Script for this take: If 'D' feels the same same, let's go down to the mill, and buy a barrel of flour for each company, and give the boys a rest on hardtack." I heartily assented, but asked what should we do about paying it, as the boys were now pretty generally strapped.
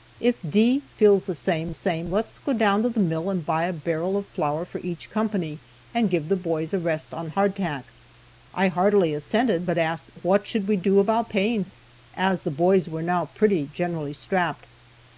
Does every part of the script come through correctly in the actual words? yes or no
yes